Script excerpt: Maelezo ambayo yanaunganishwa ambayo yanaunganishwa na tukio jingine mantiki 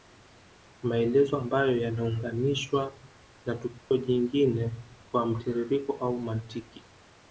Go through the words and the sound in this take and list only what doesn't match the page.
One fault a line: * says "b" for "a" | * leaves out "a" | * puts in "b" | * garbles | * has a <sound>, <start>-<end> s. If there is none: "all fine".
* leaves out "ambayo yanaunganishwa"
* has a dropout, 3.8-3.9 s
* puts in "kwa mtiririko au"